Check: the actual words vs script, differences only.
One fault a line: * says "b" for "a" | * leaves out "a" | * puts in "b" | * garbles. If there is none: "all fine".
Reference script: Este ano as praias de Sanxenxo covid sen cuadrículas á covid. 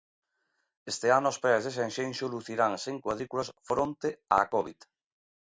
* says "lucirán" for "covid"
* puts in "fronte"